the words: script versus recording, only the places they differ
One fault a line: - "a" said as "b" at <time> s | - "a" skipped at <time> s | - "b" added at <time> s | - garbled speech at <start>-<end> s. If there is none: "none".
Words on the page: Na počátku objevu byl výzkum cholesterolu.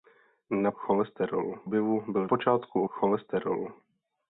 - "počátku" said as "cholesterolu" at 0.7 s
- "výzkum" said as "počátku" at 2.2 s